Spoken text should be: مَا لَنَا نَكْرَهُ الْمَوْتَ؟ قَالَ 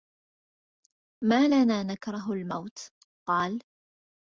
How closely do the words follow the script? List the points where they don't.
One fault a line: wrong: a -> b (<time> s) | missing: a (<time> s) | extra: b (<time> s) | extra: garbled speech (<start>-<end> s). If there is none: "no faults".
no faults